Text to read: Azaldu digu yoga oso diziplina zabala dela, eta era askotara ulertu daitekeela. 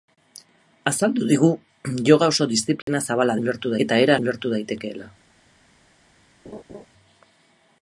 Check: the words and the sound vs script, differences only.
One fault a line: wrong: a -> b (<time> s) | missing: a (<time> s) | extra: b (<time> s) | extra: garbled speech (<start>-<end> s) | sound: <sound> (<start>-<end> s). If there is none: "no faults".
sound: dropout (2.8-2.9 s)
wrong: dela -> ulertu (3.4 s)
missing: askotara (4.2 s)
sound: laugh (6.4-6.9 s)